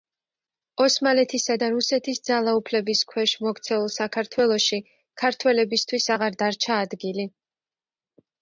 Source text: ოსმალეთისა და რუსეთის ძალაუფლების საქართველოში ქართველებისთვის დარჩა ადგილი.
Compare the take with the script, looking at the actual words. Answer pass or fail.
fail